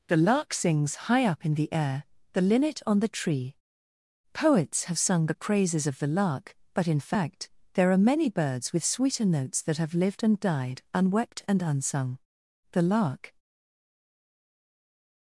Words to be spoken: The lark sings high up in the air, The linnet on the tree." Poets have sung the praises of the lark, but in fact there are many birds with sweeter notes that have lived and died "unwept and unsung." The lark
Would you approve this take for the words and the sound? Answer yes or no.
yes